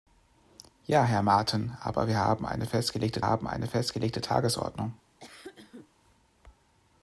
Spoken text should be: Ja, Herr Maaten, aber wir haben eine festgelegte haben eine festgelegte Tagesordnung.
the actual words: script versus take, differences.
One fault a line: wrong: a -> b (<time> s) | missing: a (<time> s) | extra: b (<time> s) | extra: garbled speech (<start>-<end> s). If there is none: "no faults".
no faults